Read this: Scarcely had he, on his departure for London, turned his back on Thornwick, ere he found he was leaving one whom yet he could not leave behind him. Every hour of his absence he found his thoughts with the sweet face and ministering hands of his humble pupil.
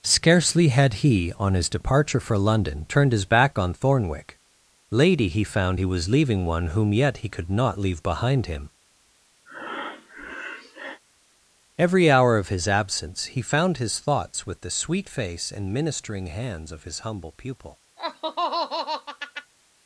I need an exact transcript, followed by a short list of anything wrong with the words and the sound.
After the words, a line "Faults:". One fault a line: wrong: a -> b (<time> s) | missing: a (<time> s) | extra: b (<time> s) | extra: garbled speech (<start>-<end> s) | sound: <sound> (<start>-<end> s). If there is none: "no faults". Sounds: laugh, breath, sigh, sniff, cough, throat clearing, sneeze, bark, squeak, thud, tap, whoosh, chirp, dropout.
Scarcely had he, on his departure for London, turned his back on Thornwick, lady he found he was leaving one whom yet he could not leave behind him. Every hour of his absence he found his thoughts with the sweet face and ministering hands of his humble pupil.
Faults:
wrong: ere -> lady (4.9 s)
sound: breath (9.5-11.0 s)
sound: laugh (18.0-19.5 s)